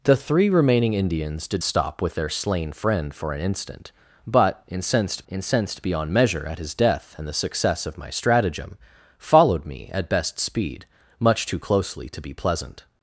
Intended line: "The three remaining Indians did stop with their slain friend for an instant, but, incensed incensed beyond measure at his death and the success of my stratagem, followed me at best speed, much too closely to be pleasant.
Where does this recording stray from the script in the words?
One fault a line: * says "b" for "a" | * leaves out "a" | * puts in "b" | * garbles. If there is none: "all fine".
all fine